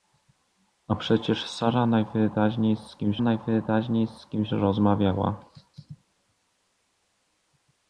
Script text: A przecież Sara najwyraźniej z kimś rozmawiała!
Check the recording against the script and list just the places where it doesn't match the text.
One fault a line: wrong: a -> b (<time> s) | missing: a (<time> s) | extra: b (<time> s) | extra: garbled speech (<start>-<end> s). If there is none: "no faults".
extra: najwyraźniej z kimś (3.2 s)